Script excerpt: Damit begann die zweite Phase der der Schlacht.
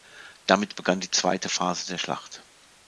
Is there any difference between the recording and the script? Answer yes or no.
yes